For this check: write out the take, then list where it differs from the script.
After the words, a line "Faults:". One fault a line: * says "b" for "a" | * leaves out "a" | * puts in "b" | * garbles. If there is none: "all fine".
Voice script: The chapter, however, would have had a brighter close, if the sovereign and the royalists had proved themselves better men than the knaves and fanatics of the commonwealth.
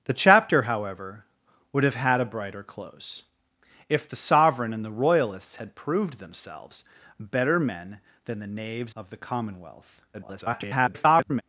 The chapter, however, would have had a brighter close, if the sovereign and the royalists had proved themselves better men than the knaves of the commonwealth. [garbled]
Faults:
* leaves out "and fanatics"
* garbles